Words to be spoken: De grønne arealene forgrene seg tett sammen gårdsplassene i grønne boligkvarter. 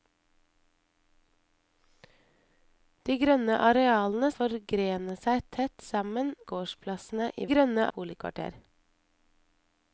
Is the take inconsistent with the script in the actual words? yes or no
no